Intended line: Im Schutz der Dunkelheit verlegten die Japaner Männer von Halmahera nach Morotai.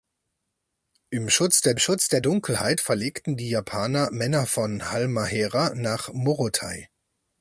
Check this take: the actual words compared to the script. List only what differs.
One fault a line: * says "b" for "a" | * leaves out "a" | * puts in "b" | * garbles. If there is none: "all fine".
* puts in "Schutz der"